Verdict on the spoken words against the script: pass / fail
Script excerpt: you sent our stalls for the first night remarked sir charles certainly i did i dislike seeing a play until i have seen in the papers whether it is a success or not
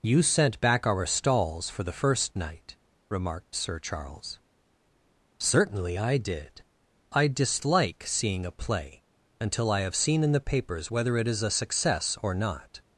fail